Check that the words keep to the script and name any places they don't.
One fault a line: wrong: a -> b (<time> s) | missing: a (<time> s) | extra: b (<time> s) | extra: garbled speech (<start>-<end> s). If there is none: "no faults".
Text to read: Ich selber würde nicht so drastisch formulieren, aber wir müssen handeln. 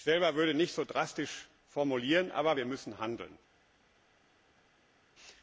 no faults